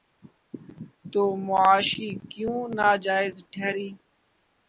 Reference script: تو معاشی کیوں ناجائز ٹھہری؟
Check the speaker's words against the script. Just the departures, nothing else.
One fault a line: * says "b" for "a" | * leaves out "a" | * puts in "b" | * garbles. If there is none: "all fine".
all fine